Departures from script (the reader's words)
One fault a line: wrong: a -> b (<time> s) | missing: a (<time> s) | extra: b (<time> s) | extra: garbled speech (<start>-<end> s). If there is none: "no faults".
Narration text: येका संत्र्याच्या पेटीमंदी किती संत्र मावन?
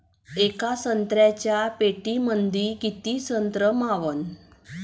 no faults